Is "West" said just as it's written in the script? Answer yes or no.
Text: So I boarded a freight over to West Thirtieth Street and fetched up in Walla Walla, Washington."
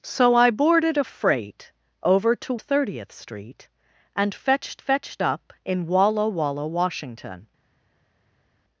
no